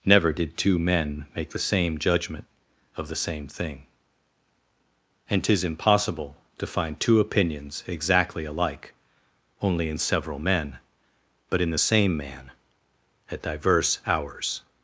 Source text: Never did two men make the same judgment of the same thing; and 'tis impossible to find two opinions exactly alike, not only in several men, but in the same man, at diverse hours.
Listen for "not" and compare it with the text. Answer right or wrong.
wrong